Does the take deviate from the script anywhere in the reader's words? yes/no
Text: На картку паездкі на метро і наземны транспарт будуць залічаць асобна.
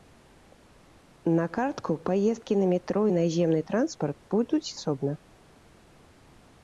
yes